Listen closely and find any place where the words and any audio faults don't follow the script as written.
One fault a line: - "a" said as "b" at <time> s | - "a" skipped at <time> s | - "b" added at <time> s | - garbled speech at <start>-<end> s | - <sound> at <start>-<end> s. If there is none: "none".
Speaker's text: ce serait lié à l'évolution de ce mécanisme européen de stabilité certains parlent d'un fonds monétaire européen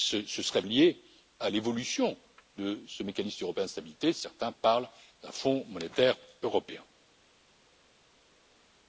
none